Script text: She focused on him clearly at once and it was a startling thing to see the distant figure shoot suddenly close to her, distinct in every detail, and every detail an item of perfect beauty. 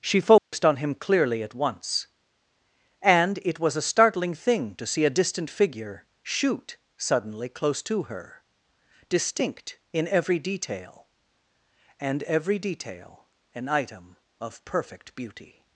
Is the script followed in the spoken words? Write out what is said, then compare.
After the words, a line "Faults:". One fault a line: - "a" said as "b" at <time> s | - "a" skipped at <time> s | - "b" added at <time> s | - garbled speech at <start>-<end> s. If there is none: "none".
She focused on him clearly at once and it was a startling thing to see a distant figure shoot suddenly close to her, distinct in every detail, and every detail an item of perfect beauty.
Faults:
- "the" said as "a" at 5.0 s